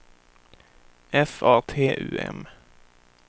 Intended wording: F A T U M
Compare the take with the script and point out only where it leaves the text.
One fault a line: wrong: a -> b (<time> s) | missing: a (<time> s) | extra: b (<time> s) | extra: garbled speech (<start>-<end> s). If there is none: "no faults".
no faults